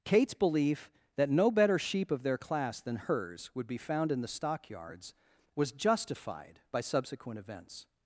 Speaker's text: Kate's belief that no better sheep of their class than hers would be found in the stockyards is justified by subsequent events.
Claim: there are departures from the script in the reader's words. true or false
true